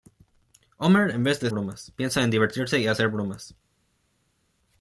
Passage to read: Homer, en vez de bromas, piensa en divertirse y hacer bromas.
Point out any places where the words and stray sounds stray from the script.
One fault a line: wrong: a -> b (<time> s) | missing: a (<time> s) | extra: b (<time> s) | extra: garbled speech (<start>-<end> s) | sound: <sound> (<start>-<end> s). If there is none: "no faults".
no faults